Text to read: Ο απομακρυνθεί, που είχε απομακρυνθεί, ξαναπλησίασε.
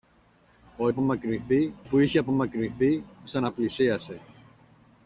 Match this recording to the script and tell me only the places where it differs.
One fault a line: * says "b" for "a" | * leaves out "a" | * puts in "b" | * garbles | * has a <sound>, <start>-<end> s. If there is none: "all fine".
all fine